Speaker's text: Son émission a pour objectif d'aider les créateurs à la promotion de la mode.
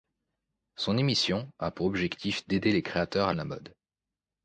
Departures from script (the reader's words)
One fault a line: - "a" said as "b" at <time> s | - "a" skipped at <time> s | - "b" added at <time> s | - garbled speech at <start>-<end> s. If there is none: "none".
- "la promotion" skipped at 3.3 s